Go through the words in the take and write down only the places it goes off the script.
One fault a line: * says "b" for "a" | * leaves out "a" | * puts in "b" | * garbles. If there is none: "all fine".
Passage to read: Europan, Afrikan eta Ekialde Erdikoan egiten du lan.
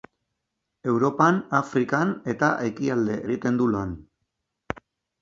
* leaves out "Erdikoan"